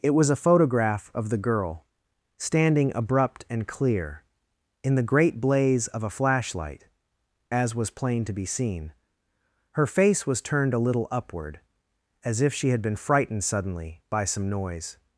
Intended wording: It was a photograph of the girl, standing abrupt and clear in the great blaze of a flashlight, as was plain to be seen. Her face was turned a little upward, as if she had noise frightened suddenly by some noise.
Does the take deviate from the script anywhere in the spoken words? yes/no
yes